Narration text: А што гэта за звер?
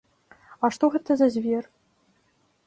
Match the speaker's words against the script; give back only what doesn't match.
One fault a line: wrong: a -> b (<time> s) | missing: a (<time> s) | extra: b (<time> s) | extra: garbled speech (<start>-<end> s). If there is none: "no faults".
no faults